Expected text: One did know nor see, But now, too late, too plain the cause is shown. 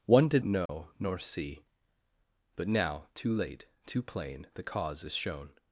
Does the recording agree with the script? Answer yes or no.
yes